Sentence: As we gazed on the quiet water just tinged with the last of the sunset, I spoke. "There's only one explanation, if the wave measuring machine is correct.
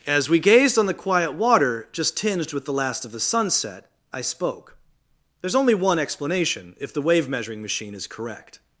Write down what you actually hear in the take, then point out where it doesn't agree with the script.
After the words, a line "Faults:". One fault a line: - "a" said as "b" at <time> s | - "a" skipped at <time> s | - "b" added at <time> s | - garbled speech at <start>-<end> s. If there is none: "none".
As we gazed on the quiet water just tinged with the last of the sunset, I spoke. "There's only one explanation, if the wave measuring machine is correct.
Faults:
none